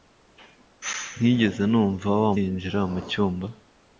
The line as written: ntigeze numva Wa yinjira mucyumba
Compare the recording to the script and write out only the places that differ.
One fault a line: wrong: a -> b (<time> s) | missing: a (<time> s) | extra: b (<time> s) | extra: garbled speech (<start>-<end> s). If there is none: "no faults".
no faults